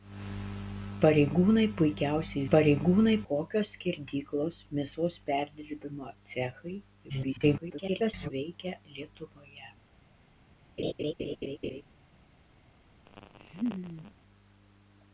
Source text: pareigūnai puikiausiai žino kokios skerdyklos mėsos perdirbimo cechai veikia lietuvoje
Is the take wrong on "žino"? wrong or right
wrong